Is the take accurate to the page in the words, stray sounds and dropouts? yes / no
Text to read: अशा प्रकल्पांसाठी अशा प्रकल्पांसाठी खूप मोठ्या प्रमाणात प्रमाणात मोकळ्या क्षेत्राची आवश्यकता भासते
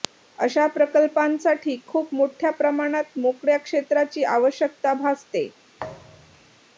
no